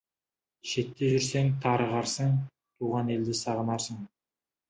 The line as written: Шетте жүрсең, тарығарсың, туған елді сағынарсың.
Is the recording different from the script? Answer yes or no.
no